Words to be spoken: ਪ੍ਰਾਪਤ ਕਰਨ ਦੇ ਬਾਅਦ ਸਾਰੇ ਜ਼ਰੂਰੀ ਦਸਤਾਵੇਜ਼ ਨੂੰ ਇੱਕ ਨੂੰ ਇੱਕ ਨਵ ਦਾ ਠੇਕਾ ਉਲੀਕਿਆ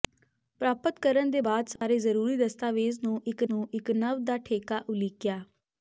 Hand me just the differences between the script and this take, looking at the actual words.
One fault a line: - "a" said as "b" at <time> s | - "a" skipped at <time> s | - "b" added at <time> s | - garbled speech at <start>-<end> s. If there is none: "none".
none